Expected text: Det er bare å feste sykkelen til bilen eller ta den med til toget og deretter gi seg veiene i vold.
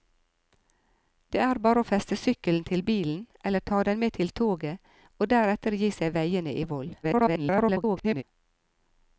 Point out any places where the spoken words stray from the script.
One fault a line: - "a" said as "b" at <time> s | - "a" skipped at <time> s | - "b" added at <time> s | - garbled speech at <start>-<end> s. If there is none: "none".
- garbled speech at 7.0-8.2 s